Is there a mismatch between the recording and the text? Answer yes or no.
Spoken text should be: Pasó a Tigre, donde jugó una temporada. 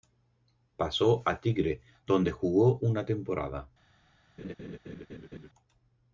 no